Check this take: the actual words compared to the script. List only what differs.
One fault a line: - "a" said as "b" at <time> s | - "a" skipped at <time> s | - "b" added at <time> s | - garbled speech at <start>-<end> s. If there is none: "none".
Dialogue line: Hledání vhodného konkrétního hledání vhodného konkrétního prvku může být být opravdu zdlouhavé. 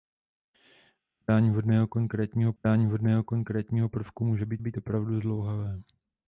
none